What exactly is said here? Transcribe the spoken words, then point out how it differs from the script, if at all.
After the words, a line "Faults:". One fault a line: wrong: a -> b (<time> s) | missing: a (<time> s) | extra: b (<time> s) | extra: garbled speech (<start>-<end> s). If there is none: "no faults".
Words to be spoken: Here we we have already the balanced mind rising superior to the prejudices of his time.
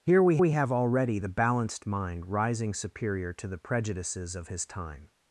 Here we we have already the balanced mind rising superior to the prejudices of his time.
Faults:
no faults